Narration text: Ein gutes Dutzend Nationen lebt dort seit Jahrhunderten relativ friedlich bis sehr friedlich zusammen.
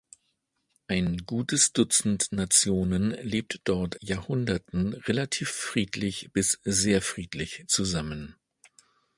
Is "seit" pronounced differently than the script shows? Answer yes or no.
yes